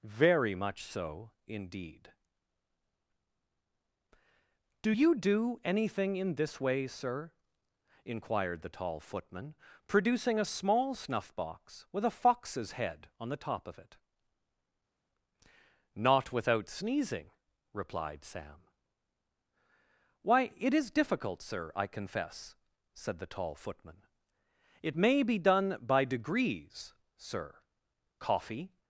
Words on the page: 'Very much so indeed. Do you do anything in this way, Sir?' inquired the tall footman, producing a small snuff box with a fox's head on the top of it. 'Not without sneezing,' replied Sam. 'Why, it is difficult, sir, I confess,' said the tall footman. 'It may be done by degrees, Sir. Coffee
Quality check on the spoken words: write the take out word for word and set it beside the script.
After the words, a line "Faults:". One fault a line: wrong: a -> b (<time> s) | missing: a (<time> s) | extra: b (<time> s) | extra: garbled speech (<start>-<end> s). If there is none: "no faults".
'Very much so indeed. Do you do anything in this way, Sir?' inquired the tall footman, producing a small snuff box with a fox's head on the top of it. 'Not without sneezing,' replied Sam. 'Why, it is difficult, sir, I confess,' said the tall footman. 'It may be done by degrees, Sir. Coffee
Faults:
no faults